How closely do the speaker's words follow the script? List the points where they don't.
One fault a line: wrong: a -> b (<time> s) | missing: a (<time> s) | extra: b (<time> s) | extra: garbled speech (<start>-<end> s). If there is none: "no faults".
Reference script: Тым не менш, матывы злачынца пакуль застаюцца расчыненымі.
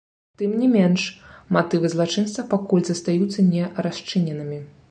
extra: не (3.5 s)